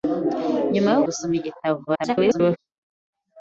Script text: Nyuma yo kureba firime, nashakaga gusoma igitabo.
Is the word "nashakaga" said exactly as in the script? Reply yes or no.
no